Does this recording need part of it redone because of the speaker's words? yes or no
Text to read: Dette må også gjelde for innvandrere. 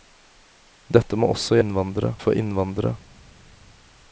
yes